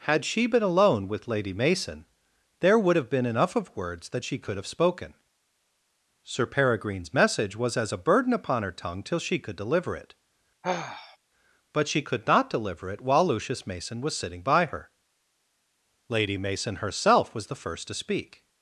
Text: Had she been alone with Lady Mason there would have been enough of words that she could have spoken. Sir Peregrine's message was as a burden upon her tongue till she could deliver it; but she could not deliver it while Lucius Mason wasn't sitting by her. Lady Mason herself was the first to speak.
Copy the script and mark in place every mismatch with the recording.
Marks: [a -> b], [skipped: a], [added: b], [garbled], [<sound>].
Had she been alone with Lady Mason there would have been enough of words that she could have spoken. Sir Peregrine's message was as a burden upon her tongue till she could deliver it; [sigh] but she could not deliver it while Lucius Mason [wasn't -> was] sitting by her. Lady Mason herself was the first to speak.